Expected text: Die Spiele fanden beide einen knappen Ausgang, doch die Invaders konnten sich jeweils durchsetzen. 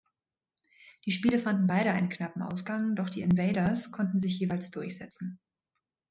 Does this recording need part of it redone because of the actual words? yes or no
no